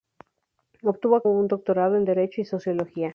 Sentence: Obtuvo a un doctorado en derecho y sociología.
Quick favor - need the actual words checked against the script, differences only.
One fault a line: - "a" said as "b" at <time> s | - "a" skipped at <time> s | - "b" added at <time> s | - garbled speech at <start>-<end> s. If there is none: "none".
none